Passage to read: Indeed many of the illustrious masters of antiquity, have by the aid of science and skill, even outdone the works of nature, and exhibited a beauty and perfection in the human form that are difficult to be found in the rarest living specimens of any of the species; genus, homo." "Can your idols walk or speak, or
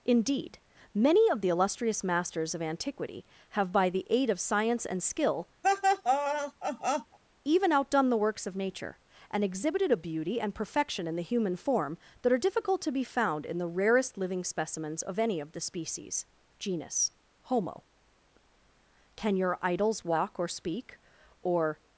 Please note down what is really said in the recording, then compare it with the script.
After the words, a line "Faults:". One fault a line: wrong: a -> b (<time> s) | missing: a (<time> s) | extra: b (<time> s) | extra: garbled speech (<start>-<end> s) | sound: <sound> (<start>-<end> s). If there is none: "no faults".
Indeed many of the illustrious masters of antiquity, have by the aid of science and skill, even outdone the works of nature, and exhibited a beauty and perfection in the human form that are difficult to be found in the rarest living specimens of any of the species; genus, homo." "Can your idols walk or speak, or
Faults:
sound: laugh (5.6-7.2 s)